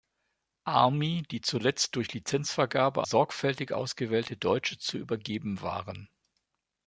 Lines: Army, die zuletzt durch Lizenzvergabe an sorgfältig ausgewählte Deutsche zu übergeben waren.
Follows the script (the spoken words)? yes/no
no